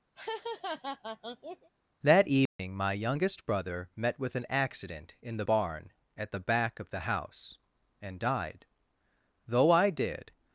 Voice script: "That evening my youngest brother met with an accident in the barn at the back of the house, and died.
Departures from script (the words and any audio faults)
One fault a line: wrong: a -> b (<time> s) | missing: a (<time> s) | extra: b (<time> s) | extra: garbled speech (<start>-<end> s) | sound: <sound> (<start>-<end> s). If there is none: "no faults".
sound: laugh (0.2-1.7 s)
sound: dropout (2.5-2.6 s)
extra: Though I did (9.5 s)